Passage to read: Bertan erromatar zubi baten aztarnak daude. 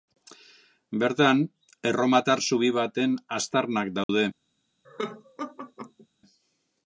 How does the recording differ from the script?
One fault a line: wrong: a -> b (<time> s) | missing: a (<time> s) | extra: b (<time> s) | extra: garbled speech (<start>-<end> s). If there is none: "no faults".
no faults